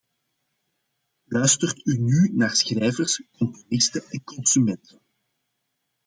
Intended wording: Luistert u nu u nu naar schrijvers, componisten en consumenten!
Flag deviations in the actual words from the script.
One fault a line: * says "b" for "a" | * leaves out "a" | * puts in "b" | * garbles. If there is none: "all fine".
* leaves out "u nu"